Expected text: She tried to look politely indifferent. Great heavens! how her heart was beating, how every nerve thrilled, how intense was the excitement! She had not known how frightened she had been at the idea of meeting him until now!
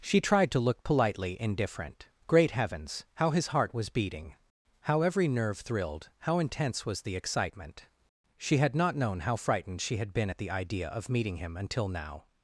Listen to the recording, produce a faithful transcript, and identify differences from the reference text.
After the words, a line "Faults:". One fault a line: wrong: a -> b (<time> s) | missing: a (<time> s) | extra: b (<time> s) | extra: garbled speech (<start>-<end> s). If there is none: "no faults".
She tried to look politely indifferent. Great heavens! how his heart was beating, how every nerve thrilled, how intense was the excitement! She had not known how frightened she had been at the idea of meeting him until now!
Faults:
wrong: her -> his (3.3 s)